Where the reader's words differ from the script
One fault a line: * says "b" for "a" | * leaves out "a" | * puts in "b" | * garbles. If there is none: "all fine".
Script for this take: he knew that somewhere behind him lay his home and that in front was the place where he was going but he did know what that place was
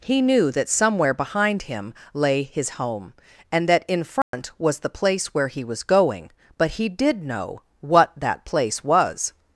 all fine